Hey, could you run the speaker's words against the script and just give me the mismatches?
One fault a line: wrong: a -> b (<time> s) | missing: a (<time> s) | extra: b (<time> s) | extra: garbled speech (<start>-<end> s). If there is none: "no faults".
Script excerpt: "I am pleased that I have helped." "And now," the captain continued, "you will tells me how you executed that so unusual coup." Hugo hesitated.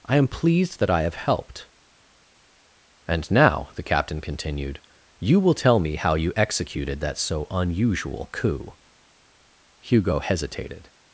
wrong: tells -> tell (5.5 s)